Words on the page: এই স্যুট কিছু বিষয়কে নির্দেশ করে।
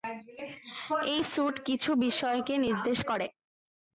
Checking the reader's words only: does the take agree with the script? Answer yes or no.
yes